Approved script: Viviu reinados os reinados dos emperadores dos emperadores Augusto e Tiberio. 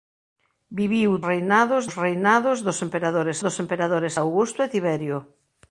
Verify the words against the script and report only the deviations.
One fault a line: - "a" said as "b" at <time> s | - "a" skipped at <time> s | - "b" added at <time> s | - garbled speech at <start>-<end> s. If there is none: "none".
none